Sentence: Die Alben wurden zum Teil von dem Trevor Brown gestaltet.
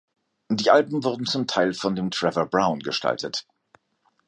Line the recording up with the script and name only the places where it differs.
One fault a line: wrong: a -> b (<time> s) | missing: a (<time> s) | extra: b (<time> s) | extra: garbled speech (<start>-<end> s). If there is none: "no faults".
no faults